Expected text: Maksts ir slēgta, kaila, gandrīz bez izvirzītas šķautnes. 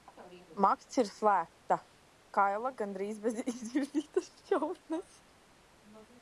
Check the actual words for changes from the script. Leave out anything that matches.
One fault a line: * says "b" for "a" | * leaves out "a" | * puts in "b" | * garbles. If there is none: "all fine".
all fine